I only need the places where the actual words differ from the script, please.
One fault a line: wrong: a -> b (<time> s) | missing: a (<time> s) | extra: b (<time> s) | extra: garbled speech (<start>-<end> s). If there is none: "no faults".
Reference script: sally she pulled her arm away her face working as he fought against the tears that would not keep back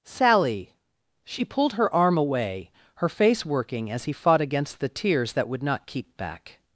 no faults